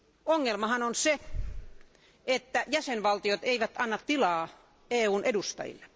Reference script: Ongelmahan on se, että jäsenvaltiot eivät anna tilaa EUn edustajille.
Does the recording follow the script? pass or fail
pass